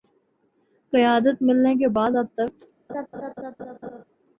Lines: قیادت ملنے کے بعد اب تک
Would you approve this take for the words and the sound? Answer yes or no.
no